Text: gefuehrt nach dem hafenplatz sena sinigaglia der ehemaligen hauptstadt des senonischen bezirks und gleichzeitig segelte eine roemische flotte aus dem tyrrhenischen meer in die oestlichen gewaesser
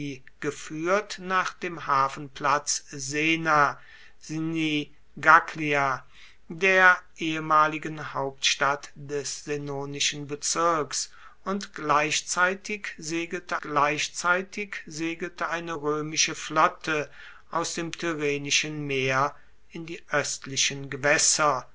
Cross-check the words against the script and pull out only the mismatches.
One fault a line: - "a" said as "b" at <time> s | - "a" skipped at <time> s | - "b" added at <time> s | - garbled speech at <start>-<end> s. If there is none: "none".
- "gleichzeitig segelte" added at 13.6 s